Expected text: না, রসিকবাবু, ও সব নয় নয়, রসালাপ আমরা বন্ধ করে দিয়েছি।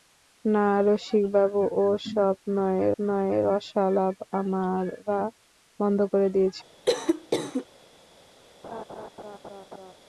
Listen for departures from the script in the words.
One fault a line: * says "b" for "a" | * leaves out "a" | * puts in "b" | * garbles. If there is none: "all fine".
all fine